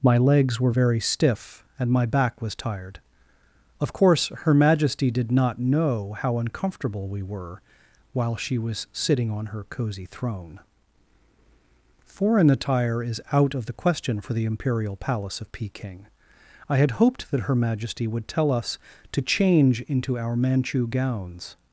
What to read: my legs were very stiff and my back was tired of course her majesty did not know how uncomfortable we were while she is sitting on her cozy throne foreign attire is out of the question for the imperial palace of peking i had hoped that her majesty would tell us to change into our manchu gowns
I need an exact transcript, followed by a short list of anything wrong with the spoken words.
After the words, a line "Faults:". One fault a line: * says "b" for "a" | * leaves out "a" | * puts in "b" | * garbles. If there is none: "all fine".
my legs were very stiff and my back was tired of course her majesty did not know how uncomfortable we were while she was sitting on her cozy throne foreign attire is out of the question for the imperial palace of peking i had hoped that her majesty would tell us to change into our manchu gowns
Faults:
* says "was" for "is"